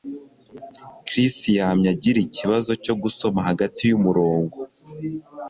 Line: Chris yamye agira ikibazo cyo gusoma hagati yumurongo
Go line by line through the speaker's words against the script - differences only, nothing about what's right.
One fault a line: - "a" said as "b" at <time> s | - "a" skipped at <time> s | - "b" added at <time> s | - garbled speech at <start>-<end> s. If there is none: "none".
none